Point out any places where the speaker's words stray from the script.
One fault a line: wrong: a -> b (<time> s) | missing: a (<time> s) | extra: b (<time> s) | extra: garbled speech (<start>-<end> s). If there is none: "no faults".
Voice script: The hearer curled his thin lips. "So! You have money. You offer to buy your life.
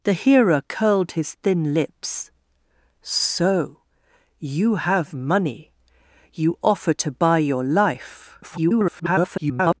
extra: garbled speech (8.4-9.8 s)